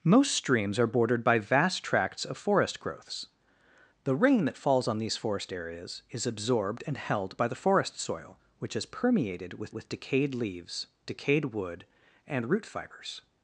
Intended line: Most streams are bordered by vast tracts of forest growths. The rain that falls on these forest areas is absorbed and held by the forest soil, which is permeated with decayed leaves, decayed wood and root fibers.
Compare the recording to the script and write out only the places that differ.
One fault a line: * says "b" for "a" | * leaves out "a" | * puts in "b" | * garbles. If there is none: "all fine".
* puts in "with"